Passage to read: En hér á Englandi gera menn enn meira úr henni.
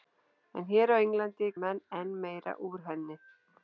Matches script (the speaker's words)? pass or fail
fail